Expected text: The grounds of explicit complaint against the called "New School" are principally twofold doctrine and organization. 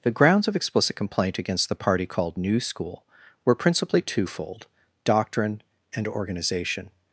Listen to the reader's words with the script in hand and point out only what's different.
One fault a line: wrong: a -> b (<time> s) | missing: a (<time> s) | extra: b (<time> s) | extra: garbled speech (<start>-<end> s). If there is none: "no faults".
extra: party (1.8 s)
wrong: are -> were (3.4 s)